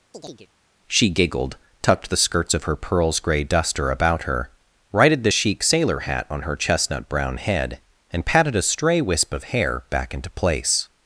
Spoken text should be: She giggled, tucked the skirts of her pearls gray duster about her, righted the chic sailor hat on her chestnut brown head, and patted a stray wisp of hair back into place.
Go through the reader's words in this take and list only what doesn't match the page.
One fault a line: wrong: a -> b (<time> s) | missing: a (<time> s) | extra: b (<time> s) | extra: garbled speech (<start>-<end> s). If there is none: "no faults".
no faults